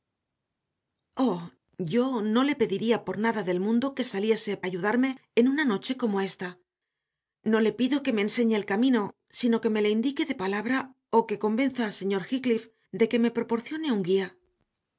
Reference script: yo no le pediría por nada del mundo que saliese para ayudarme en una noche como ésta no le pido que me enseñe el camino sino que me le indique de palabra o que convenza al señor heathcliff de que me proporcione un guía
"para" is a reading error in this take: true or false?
true